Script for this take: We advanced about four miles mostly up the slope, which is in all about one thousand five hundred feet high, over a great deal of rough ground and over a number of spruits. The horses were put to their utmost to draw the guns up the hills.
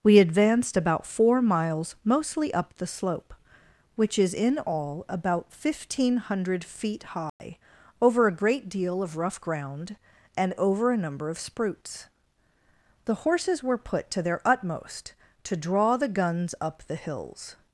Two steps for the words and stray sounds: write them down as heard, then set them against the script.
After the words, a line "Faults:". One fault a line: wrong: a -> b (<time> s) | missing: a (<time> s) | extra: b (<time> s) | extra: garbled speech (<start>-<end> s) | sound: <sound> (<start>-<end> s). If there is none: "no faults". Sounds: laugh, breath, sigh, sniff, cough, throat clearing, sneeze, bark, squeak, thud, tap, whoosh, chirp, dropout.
We advanced about four miles mostly up the slope, which is in all about one thousand five hundred feet high, over a great deal of rough ground and over a number of spruits. The horses were put to their utmost to draw the guns up the hills.
Faults:
sound: dropout (7.3-7.4 s)